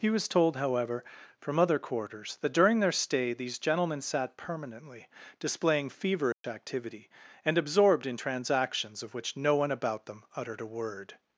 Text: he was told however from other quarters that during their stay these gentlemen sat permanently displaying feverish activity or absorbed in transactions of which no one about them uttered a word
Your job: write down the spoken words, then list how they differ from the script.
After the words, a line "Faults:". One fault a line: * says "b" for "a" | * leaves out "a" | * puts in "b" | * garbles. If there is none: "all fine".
he was told however from other quarters that during their stay these gentlemen sat permanently displaying feverish activity and absorbed in transactions of which no one about them uttered a word
Faults:
* says "and" for "or"